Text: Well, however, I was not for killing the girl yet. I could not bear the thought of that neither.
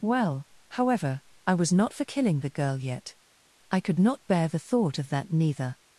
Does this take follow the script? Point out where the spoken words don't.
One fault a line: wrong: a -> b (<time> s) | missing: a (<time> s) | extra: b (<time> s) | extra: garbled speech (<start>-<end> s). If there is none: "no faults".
no faults